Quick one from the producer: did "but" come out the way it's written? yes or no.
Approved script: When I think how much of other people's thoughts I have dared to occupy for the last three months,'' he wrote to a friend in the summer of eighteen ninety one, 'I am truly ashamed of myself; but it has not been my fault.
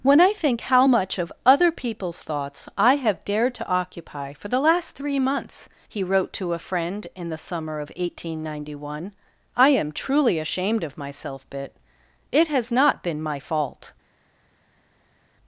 no